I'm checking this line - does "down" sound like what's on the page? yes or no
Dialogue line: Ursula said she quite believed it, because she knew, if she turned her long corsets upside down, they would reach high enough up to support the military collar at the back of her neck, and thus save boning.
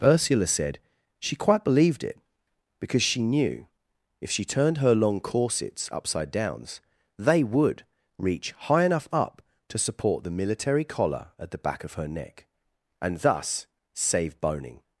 no